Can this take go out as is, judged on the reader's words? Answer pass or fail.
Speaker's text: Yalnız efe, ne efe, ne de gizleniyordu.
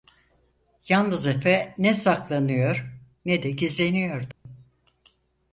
fail